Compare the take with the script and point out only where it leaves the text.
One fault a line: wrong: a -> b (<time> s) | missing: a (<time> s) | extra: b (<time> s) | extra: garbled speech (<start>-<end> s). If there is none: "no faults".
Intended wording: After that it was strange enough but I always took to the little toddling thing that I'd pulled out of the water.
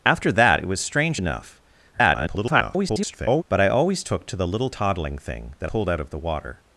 extra: garbled speech (1.9-3.4 s)
missing: I'd (5.7 s)